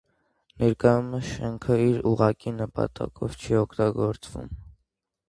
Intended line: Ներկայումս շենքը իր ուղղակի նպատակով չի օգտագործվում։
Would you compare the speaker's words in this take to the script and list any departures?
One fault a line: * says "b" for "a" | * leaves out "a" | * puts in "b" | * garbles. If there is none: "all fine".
all fine